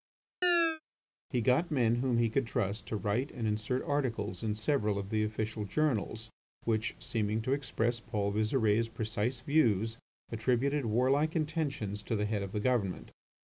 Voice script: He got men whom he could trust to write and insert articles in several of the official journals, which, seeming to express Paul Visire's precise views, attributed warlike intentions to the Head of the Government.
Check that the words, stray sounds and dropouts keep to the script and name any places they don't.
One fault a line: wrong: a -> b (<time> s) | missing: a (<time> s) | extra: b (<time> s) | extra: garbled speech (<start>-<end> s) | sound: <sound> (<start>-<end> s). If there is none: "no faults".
sound: chirp (0.4-0.8 s)